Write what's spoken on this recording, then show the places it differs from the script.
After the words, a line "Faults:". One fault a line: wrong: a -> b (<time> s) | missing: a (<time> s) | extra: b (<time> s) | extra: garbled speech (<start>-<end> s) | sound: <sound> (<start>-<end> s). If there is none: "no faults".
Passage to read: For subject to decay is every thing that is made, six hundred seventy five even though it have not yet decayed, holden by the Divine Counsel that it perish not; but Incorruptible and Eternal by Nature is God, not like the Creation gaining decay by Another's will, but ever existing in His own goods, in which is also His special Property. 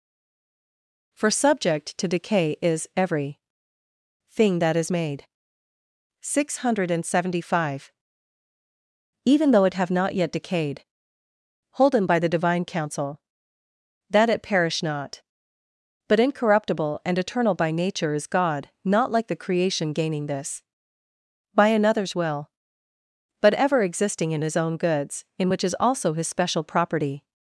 For subject to decay is every thing that is made, six hundred seventy five even though it have not yet decayed, holden by the Divine Counsel that it perish not; but Incorruptible and Eternal by Nature is God, not like the Creation gaining this by Another's will, but ever existing in His own goods, in which is also His special Property.
Faults:
wrong: decay -> this (20.3 s)